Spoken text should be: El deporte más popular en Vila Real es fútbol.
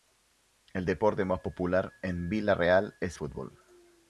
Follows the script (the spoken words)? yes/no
yes